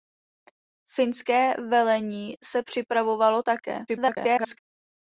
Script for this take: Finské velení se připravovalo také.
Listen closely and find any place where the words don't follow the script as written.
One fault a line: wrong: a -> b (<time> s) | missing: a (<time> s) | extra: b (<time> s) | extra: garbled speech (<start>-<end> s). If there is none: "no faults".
extra: garbled speech (3.9-4.6 s)